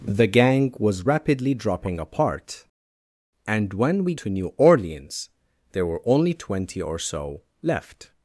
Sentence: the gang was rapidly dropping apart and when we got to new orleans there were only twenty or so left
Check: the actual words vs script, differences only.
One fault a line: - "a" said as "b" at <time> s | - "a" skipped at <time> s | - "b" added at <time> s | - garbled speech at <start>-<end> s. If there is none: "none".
- "got" skipped at 4.1 s